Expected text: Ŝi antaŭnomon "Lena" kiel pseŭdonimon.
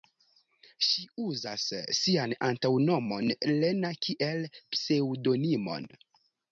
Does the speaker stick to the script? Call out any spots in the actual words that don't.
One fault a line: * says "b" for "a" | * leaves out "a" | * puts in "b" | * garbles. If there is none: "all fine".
* puts in "uzas sian"